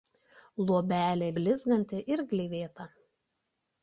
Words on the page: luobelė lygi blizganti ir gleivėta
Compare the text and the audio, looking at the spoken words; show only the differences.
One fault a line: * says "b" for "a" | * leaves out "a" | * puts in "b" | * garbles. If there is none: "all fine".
* leaves out "lygi"